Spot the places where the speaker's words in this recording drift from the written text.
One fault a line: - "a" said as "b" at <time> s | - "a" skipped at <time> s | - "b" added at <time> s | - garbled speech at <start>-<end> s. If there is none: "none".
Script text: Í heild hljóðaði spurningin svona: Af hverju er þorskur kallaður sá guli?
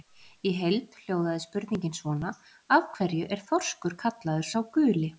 none